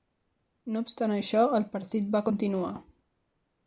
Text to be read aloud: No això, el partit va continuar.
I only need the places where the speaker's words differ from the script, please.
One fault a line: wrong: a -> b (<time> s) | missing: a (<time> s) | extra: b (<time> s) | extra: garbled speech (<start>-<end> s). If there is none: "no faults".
extra: obstant (0.8 s)